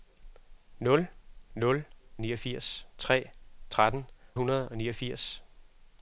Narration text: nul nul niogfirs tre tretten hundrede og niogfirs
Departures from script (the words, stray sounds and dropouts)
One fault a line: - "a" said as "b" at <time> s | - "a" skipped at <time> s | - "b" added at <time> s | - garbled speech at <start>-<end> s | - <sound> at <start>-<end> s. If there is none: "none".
none